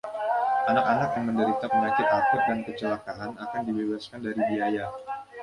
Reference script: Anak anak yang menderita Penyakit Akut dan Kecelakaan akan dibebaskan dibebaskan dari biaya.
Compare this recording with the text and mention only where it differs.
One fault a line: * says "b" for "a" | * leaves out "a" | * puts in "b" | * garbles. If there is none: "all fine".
* leaves out "dibebaskan"